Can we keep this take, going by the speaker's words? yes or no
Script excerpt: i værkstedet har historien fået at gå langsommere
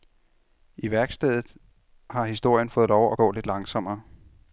no